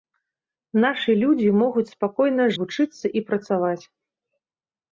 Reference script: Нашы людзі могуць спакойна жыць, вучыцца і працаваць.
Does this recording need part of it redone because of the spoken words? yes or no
yes